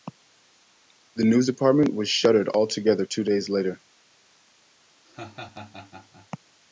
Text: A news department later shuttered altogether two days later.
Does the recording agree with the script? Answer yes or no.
no